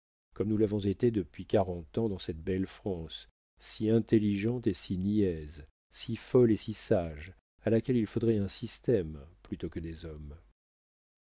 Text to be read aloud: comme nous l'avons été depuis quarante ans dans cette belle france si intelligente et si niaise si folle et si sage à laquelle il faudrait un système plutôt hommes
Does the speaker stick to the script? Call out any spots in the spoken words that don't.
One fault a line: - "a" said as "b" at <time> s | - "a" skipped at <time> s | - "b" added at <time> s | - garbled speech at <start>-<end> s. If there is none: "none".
- "que des" added at 9.7 s